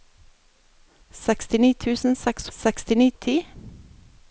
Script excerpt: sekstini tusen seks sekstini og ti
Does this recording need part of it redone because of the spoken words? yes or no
no